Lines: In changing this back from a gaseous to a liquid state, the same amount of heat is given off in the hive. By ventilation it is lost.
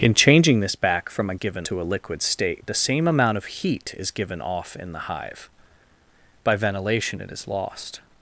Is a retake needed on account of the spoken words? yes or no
yes